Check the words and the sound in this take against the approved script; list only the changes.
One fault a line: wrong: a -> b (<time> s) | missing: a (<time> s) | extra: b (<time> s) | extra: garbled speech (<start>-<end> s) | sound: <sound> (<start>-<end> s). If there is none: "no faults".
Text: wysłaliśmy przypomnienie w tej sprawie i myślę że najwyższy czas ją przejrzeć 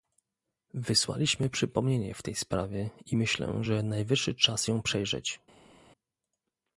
no faults